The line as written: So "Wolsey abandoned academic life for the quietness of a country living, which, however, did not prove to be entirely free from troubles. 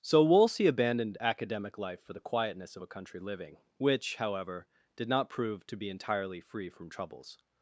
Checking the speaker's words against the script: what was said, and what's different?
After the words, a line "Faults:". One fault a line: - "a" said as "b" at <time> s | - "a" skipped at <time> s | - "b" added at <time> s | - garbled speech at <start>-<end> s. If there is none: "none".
So "Wolsey abandoned academic life for the quietness of a country living, which, however, did not prove to be entirely free from troubles.
Faults:
none